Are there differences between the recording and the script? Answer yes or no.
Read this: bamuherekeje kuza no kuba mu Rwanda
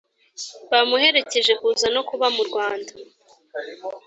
no